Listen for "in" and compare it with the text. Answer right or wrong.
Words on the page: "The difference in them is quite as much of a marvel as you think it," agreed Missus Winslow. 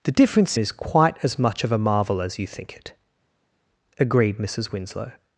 wrong